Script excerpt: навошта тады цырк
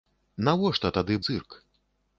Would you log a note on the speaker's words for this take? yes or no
no